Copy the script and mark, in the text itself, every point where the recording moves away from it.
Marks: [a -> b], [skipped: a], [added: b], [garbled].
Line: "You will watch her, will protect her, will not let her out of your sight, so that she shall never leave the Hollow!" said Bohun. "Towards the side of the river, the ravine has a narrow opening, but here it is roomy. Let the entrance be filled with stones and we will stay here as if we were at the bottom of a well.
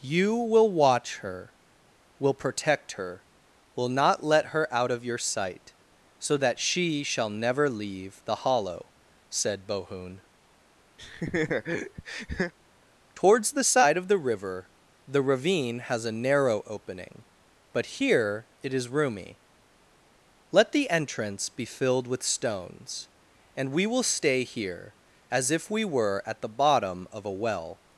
"You will watch her, will protect her, will not let her out of your sight, so that she shall never leave the Hollow!" said Bohun. "Towards the side of the river, the ravine has a narrow opening, but here it is roomy. Let the entrance be filled with stones and we will stay here as if we were at the bottom of a well.